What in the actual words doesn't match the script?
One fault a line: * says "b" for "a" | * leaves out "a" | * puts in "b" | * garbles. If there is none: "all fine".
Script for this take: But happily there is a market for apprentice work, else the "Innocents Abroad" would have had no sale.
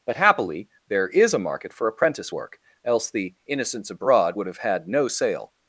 all fine